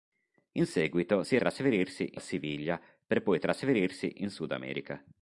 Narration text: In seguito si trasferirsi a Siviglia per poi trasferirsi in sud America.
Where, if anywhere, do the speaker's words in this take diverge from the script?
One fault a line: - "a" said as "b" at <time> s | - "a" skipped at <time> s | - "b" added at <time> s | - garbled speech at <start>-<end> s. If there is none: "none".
none